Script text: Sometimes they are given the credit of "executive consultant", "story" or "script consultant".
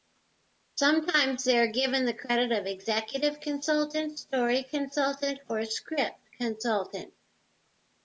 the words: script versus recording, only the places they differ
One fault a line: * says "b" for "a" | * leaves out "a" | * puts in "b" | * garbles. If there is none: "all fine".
* puts in "consultant"